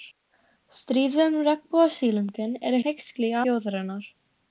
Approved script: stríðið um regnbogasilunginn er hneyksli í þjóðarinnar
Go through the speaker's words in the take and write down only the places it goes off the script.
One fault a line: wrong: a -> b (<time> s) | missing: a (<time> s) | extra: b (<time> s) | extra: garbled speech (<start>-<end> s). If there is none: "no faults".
no faults